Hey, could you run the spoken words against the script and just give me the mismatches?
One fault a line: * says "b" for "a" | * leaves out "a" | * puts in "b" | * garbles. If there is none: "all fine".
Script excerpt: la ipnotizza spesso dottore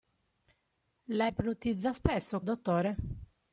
all fine